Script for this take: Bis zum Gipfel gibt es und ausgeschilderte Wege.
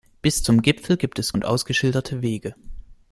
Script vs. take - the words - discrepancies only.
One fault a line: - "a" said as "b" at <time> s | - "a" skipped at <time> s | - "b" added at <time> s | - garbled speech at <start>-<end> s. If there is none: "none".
none